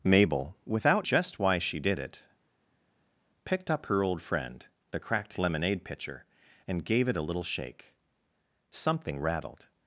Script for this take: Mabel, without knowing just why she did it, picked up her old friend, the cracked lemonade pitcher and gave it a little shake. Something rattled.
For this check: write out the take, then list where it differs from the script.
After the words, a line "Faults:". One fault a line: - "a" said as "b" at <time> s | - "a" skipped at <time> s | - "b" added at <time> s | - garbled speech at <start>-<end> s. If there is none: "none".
Mabel, without just why she did it, picked up her old friend, the cracked lemonade pitcher and gave it a little shake. Something rattled.
Faults:
- "knowing" skipped at 1.1 s